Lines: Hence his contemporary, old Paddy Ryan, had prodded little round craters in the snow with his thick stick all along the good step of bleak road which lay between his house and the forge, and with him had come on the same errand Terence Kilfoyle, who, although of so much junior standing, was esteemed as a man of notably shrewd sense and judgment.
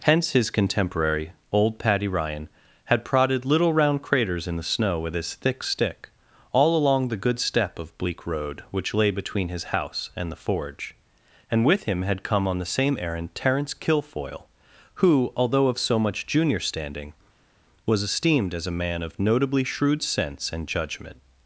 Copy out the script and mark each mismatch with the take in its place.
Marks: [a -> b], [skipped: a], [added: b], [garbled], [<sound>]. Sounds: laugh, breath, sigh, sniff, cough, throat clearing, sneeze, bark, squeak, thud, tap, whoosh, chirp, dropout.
Hence his contemporary, old Paddy Ryan, had prodded little round craters in the snow with his thick stick all along the good step of bleak road which lay between his house and the forge, and with him had come on the same errand Terence Kilfoyle, who, although of so much junior standing, was esteemed as a man of notably shrewd sense and judgment.